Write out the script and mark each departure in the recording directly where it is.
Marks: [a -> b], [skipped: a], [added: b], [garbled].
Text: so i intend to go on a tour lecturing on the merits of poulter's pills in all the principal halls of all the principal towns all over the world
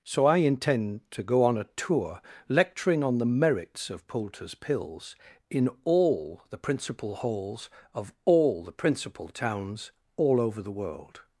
so i intend to go on a tour lecturing on the merits of poulter's pills in all the principal halls of all the principal towns all over the world